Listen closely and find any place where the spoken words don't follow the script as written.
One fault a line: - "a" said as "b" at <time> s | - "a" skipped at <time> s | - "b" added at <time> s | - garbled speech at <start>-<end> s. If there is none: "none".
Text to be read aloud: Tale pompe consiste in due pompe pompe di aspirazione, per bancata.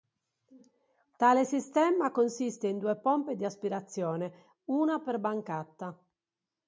- "pompe" said as "sistema" at 1.4 s
- "pompe" skipped at 3.4 s
- "una" added at 4.7 s